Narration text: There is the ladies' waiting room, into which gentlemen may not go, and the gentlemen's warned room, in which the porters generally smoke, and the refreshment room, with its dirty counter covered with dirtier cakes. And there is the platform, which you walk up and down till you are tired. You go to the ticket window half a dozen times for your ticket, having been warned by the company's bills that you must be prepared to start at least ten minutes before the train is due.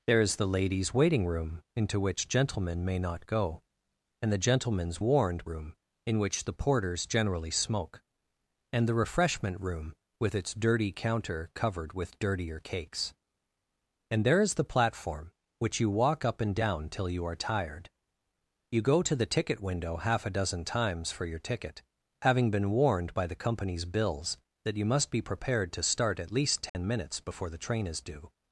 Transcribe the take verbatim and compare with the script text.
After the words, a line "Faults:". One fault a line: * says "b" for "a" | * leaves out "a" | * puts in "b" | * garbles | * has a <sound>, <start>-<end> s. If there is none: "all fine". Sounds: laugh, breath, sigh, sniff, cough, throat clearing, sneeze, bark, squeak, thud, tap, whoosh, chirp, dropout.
There is the ladies' waiting room, into which gentlemen may not go, and the gentlemen's warned room, in which the porters generally smoke, and the refreshment room, with its dirty counter covered with dirtier cakes. And there is the platform, which you walk up and down till you are tired. You go to the ticket window half a dozen times for your ticket, having been warned by the company's bills that you must be prepared to start at least ten minutes before the train is due.
Faults:
* has a dropout, 26.7-26.7 s